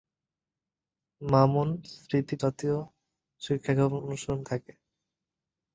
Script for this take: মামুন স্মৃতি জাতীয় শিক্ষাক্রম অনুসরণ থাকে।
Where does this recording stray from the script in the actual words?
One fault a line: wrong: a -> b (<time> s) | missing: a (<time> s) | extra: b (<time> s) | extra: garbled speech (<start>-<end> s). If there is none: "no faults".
no faults